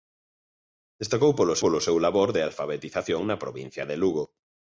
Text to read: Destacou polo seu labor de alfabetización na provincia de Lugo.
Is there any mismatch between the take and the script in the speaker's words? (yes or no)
yes